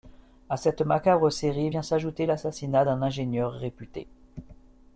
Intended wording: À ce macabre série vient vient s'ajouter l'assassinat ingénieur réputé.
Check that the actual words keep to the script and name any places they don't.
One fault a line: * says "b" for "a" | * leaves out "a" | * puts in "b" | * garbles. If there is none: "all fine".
* says "cette" for "ce"
* leaves out "vient"
* puts in "d'un"